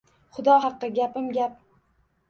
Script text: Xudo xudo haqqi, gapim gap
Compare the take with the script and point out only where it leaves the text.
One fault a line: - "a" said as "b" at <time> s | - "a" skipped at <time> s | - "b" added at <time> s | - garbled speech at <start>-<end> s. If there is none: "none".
- "xudo" skipped at 0.6 s